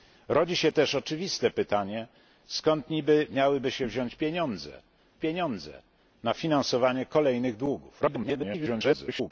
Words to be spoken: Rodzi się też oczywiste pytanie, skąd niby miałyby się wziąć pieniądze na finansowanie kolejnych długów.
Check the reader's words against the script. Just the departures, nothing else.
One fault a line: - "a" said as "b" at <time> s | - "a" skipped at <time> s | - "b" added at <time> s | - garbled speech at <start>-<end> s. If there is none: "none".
- "pieniądze" added at 5.2 s
- garbled speech at 8.0-9.3 s